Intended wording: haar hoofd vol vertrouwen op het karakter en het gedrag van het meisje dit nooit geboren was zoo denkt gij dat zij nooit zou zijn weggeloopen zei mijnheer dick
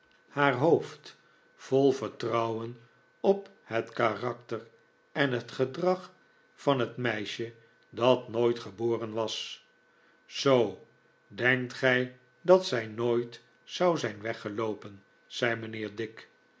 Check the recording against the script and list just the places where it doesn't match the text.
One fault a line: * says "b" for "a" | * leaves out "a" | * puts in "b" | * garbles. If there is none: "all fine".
* says "dat" for "dit"